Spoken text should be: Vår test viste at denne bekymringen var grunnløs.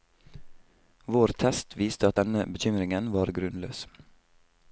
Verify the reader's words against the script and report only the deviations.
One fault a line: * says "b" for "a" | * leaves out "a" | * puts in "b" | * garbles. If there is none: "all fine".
all fine